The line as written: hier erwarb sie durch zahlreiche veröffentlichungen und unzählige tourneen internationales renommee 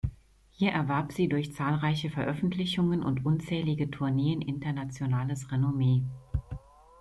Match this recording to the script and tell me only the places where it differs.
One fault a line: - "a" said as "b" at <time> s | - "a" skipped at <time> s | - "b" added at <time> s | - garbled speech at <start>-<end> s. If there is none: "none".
none